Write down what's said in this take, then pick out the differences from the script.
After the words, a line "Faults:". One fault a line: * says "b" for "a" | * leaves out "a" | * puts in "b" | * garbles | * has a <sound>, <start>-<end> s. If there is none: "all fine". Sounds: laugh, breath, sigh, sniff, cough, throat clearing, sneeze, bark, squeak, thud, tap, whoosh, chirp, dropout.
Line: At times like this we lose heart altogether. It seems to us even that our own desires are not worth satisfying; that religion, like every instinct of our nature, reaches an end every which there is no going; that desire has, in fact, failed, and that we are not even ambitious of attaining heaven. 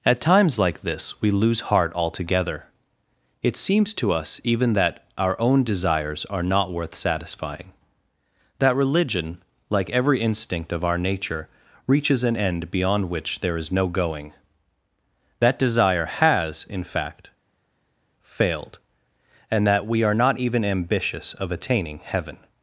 At times like this we lose heart altogether. It seems to us even that our own desires are not worth satisfying; that religion, like every instinct of our nature, reaches an end beyond which there is no going; that desire has, in fact, failed, and that we are not even ambitious of attaining heaven.
Faults:
* says "beyond" for "every"